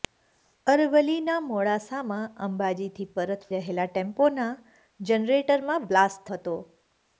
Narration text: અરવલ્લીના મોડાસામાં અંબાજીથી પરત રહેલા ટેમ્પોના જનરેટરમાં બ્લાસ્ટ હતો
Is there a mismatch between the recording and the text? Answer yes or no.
no